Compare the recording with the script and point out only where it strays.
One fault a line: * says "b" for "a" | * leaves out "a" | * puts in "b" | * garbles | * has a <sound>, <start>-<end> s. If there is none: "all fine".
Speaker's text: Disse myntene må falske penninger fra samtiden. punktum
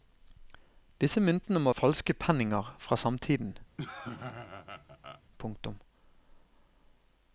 * has a laugh, 3.8-5.2 s